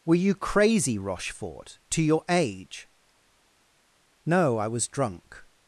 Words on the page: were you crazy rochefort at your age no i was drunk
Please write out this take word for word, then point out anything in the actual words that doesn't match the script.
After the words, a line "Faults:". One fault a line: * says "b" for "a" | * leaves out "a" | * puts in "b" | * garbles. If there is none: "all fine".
were you crazy rochefort to your age no i was drunk
Faults:
* says "to" for "at"